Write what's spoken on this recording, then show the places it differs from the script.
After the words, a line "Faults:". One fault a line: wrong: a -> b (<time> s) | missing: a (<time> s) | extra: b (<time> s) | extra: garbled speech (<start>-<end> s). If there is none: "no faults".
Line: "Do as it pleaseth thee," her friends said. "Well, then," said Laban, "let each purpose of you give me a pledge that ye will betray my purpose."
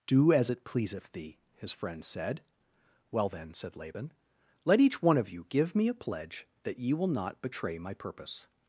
"Do as it pleaseth thee," his friends said. "Well, then," said Laban, "let each one of you give me a pledge that ye will not betray my purpose."
Faults:
wrong: her -> his (1.6 s)
wrong: purpose -> one (5.0 s)
extra: not (7.1 s)